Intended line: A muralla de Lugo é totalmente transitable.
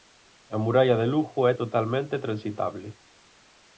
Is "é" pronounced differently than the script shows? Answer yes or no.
no